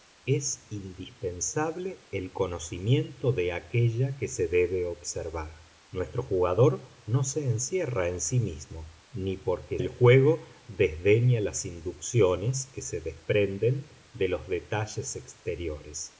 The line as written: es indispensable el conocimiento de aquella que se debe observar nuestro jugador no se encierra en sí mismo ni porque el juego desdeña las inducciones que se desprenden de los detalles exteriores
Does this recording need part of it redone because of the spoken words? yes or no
no